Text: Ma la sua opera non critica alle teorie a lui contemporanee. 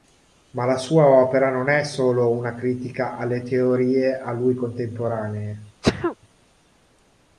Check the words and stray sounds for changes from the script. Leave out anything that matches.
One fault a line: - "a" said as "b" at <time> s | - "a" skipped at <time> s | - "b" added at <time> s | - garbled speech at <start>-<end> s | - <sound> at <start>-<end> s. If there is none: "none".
- "è solo una" added at 1.7 s
- sneeze at 5.8-6.2 s